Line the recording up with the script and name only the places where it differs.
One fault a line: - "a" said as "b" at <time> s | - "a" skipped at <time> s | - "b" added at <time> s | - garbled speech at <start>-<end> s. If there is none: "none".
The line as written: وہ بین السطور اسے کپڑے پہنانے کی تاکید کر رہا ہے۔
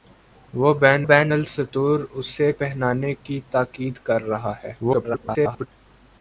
- "بین" added at 1.0 s
- "کپڑے" skipped at 2.5 s
- garbled speech at 4.8-5.7 s